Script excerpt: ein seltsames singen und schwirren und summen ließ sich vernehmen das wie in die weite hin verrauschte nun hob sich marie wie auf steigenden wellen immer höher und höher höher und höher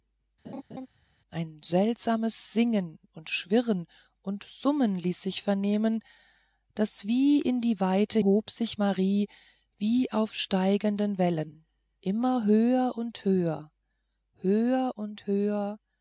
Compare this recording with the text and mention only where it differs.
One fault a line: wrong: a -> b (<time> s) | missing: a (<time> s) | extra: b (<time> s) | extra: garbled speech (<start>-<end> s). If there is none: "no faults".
missing: hin verrauschte nun (8.2 s)